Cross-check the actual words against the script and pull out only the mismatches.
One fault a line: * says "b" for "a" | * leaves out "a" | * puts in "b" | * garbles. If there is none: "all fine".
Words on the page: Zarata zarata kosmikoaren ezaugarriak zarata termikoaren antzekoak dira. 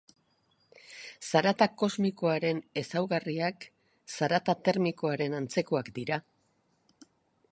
* leaves out "zarata"